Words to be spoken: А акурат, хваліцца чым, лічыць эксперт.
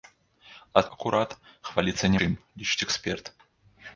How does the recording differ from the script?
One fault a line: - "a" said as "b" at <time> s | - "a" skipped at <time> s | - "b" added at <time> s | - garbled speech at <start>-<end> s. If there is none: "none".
none